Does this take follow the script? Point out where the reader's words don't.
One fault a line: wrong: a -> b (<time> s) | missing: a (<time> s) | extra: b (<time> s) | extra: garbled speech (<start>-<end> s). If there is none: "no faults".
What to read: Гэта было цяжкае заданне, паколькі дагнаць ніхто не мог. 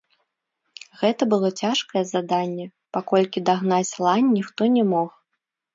extra: лань (4.1 s)